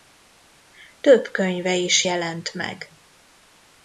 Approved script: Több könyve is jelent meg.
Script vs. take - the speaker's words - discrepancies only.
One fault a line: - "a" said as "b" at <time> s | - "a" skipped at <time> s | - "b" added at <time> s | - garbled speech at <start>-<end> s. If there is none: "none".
none